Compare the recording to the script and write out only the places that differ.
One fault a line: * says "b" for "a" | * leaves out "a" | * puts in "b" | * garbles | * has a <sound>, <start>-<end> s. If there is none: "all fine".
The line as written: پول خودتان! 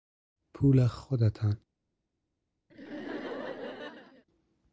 * has a laugh, 2.7-4.2 s